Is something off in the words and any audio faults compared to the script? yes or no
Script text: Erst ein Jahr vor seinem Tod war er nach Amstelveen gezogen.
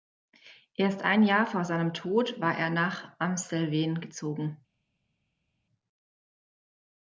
no